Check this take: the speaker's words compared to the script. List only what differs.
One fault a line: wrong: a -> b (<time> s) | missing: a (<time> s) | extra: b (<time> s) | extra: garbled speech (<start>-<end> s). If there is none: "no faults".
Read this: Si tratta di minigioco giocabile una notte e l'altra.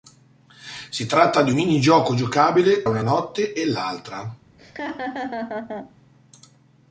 no faults